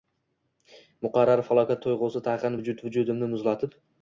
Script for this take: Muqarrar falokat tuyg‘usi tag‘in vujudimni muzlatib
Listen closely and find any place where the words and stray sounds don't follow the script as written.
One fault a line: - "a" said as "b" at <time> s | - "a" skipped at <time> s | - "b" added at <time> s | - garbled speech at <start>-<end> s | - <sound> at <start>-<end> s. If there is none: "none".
- "vujud" added at 2.6 s